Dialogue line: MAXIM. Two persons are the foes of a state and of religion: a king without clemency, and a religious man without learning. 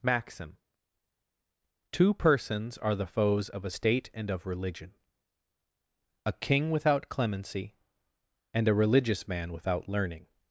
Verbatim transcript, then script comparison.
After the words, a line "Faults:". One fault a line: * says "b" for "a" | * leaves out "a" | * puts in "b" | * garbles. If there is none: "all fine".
MAXIM. Two persons are the foes of a state and of religion: a king without clemency, and a religious man without learning.
Faults:
all fine